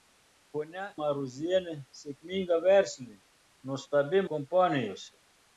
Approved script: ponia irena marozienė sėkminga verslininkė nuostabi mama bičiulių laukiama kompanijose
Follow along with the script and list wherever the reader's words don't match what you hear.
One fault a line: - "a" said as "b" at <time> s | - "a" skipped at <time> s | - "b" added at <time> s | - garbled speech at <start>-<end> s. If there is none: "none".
- "irena" skipped at 0.8 s
- "mama bičiulių laukiama" skipped at 4.2 s